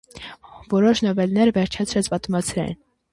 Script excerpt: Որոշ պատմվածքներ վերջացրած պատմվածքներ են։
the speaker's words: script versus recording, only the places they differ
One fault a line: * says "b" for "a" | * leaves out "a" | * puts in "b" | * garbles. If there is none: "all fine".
* says "նովելներ" for "պատմվածքներ"